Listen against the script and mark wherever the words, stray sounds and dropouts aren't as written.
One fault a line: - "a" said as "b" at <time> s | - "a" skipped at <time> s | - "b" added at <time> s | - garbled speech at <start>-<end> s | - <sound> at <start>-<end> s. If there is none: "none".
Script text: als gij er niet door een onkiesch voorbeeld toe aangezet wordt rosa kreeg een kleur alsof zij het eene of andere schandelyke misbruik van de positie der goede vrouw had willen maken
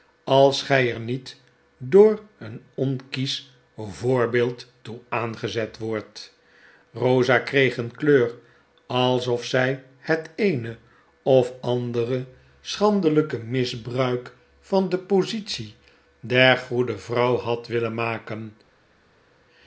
none